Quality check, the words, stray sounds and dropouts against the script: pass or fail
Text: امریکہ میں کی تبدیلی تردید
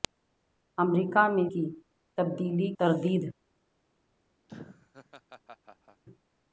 fail